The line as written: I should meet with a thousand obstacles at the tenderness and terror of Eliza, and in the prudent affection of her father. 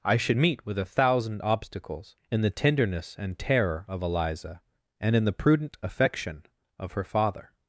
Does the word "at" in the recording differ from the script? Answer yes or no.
yes